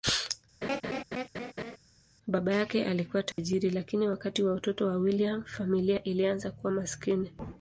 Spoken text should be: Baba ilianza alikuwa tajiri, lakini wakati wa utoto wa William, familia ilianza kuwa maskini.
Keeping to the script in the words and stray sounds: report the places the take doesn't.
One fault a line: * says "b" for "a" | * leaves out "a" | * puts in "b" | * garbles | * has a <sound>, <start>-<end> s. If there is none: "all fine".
* has a laugh, 0.6-1.8 s
* says "yake" for "ilianza"
* has a dropout, 3.3-3.4 s